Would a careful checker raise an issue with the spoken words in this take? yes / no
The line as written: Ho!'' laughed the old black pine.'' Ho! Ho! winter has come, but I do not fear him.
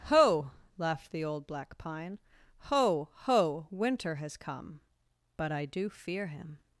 yes